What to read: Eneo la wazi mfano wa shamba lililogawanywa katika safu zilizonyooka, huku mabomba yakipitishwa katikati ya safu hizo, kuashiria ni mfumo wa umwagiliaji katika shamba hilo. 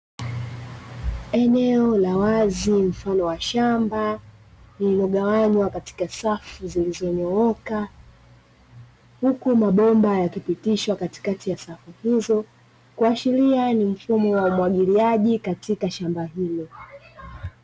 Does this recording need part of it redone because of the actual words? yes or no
no